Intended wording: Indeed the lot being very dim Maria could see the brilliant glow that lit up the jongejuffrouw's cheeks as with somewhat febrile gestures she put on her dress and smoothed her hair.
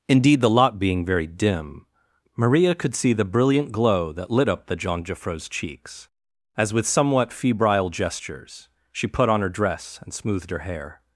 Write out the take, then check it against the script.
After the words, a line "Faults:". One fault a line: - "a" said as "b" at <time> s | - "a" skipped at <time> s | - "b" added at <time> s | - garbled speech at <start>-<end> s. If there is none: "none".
Indeed the lot being very dim Maria could see the brilliant glow that lit up the jongejuffrouw's cheeks as with somewhat febrile gestures she put on her dress and smoothed her hair.
Faults:
none